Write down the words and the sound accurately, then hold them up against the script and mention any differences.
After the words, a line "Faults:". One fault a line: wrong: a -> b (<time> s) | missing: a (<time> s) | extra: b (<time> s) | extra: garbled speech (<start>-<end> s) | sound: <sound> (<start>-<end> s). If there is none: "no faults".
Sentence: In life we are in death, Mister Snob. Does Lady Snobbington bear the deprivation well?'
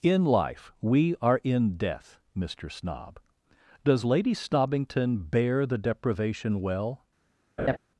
In life we are in death, Mister Snob. Does Lady Snobbington bear the deprivation well?'
Faults:
sound: laugh (7.6-7.8 s)